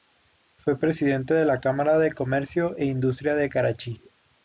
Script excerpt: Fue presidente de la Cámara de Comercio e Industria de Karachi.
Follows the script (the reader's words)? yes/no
yes